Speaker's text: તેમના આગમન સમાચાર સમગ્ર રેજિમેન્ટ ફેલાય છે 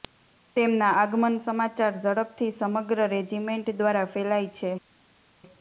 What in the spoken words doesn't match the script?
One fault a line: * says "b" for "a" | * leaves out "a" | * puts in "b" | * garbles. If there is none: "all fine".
* puts in "ઝડપથી"
* puts in "દ્વારા"